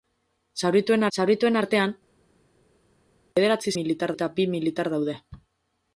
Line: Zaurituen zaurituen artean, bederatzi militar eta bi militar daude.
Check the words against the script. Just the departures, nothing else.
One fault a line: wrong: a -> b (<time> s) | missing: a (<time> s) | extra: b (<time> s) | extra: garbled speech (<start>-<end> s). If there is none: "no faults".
no faults